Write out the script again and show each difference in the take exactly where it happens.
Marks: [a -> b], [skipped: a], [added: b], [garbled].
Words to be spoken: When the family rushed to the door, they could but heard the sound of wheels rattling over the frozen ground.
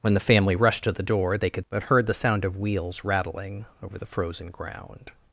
When the family rushed to the door, they could but heard the sound of wheels rattling over the frozen ground.